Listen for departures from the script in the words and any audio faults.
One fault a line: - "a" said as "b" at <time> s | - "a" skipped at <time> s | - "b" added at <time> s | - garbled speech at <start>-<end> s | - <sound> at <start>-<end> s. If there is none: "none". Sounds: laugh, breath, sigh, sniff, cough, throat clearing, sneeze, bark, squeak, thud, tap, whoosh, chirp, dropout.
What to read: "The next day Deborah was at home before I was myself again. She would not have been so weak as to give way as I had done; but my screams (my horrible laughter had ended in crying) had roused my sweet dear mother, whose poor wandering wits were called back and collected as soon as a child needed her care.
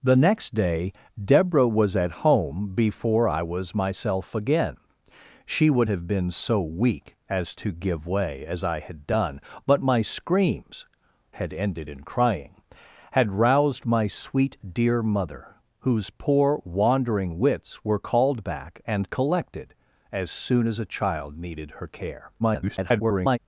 - "not" skipped at 5.9 s
- "my horrible laughter" skipped at 10.9 s
- garbled speech at 22.4-23.4 s